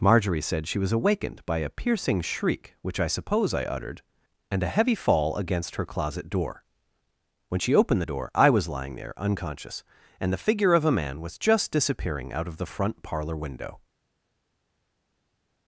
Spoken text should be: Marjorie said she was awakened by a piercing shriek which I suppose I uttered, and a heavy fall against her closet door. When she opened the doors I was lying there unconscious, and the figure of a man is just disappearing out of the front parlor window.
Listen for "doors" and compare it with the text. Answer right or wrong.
wrong